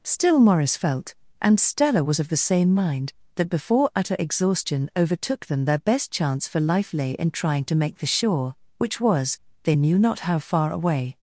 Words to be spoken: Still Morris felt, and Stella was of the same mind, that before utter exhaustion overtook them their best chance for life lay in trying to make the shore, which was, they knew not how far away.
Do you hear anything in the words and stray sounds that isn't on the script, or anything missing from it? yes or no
no